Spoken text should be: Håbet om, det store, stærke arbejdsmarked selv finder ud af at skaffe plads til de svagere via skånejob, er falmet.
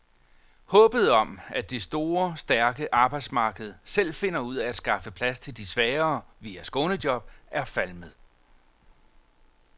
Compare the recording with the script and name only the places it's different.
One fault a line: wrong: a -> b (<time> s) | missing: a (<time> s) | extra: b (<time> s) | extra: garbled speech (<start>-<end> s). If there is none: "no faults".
extra: at (1.5 s)